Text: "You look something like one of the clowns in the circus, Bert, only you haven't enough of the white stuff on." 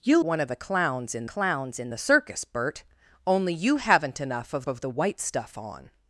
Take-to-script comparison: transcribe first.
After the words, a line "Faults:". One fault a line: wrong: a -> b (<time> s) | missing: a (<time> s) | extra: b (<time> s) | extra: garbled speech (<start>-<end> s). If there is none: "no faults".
"You one of the clowns in clowns in the circus, Bert, only you haven't enough of of the white stuff on."
Faults:
missing: look something like (0.2 s)
extra: clowns in (1.3 s)
extra: of (4.7 s)